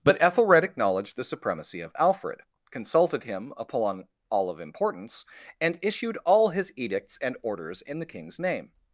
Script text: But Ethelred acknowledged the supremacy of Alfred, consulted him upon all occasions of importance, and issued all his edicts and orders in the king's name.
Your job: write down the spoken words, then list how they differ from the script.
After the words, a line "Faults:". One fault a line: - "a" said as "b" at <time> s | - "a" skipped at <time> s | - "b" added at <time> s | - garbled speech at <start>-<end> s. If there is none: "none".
But Ethelred acknowledged the supremacy of Alfred, consulted him upon all of importance, and issued all his edicts and orders in the king's name.
Faults:
- "occasions" skipped at 4.5 s